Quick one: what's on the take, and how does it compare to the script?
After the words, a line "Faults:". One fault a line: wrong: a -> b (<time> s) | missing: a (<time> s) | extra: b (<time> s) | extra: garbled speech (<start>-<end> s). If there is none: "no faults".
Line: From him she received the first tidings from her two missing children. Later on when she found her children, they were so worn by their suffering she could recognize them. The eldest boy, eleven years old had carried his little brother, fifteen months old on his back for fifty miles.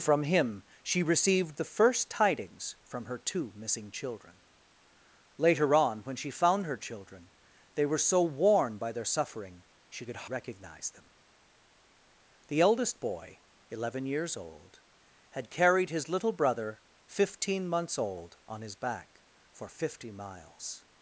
From him she received the first tidings from her two missing children. Later on when she found her children, they were so worn by their suffering she could recognize them. The eldest boy, eleven years old had carried his little brother, fifteen months old on his back for fifty miles.
Faults:
no faults